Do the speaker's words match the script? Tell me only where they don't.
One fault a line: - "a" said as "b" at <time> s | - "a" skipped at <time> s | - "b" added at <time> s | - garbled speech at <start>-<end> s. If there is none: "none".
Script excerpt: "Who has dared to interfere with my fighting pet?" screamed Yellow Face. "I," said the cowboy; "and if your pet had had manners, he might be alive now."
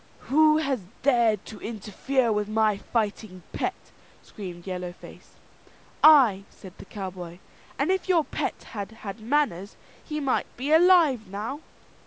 none